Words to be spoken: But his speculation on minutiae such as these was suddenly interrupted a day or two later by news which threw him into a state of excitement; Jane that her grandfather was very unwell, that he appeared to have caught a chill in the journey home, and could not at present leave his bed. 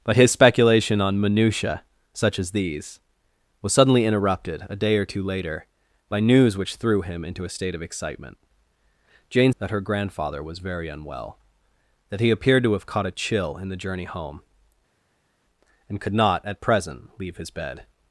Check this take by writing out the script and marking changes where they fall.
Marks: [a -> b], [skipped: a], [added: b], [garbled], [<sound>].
But his speculation on minutiae such as these was suddenly interrupted a day or two later by news which threw him into a state of excitement; Jane that her grandfather was very unwell, that he appeared to have caught a chill in the journey home, and could not at present leave his bed.